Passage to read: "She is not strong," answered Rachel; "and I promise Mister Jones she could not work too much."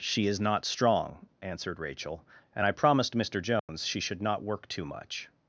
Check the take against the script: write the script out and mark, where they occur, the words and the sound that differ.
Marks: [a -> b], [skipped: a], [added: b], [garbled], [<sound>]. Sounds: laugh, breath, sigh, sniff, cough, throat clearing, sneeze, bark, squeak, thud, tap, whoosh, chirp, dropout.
"She is not strong," answered Rachel; "and I [promise -> promised] Mister Jones [dropout] she [could -> should] not work too much."